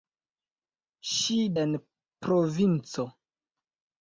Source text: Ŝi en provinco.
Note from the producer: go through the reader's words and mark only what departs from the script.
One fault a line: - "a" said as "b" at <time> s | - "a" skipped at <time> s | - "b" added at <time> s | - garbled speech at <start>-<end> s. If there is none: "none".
none